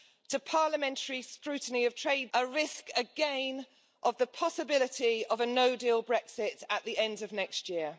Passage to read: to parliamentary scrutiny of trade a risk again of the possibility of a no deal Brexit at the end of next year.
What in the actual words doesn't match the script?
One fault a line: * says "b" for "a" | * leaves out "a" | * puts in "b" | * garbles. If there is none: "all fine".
all fine